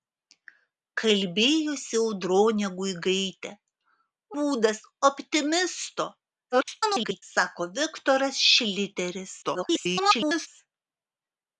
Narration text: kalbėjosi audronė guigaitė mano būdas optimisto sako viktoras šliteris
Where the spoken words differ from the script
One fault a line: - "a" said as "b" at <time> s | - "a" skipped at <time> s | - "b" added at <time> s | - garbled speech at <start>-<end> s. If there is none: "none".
- "mano" skipped at 3.5 s
- garbled speech at 6.5-7.2 s
- garbled speech at 9.4-10.5 s